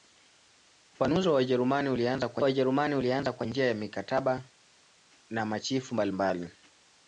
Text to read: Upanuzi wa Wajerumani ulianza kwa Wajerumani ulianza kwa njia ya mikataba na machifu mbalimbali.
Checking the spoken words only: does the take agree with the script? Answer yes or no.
yes